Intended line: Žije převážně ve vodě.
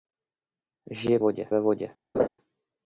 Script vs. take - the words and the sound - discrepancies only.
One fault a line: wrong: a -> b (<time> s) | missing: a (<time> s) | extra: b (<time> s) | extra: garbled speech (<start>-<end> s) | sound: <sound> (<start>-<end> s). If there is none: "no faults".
wrong: převážně -> vodě (1.2 s)
sound: laugh (2.1-2.3 s)